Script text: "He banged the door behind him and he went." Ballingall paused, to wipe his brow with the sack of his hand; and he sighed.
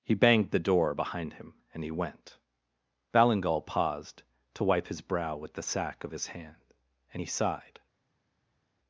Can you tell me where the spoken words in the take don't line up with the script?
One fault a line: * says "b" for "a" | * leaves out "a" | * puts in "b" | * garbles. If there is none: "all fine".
all fine